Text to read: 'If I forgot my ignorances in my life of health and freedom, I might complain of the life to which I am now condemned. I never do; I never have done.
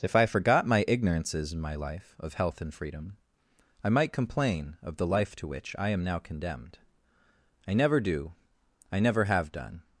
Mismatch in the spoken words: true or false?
false